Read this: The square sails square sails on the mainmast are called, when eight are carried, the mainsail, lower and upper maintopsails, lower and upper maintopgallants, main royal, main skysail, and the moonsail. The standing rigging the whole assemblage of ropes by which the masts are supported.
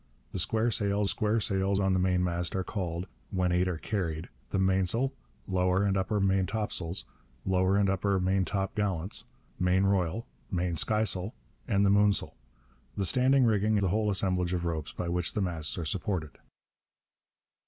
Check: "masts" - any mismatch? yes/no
no